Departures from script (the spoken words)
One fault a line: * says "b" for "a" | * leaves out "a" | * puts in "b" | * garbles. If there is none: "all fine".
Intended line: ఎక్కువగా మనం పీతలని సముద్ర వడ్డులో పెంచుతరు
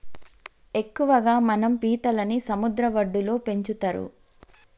all fine